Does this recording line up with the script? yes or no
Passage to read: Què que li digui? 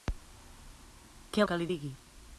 yes